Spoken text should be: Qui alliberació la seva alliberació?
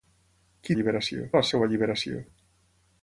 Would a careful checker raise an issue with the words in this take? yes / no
no